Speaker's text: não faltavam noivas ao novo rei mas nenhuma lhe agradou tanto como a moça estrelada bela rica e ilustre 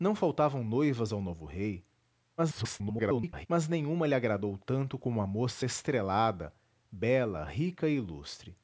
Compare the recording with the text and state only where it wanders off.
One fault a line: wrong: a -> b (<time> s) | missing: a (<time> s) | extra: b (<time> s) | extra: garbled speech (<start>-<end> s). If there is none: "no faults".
extra: garbled speech (2.4-3.5 s)